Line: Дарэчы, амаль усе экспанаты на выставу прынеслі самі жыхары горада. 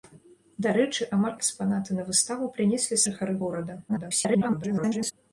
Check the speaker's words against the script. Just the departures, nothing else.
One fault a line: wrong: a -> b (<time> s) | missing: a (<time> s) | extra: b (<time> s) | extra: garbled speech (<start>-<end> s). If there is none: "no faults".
missing: усе (1.4 s)
missing: самі (3.0 s)
extra: garbled speech (3.9-5.1 s)